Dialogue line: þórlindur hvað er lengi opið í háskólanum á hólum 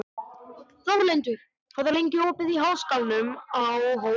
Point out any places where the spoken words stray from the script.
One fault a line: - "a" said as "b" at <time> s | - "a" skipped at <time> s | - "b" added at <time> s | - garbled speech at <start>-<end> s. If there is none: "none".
none